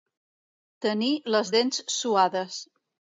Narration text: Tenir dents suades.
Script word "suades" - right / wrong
right